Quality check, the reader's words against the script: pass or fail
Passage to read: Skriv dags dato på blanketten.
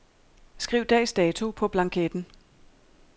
pass